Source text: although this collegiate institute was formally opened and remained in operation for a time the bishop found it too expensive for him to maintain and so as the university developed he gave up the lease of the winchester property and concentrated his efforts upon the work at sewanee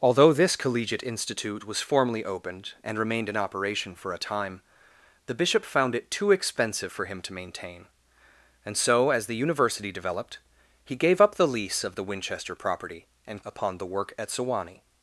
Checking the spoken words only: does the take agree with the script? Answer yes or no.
no